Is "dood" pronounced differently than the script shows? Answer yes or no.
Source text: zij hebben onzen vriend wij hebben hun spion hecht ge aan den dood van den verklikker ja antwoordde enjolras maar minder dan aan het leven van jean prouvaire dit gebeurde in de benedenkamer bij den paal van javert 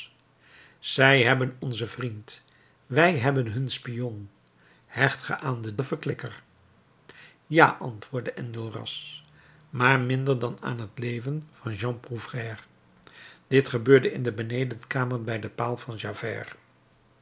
yes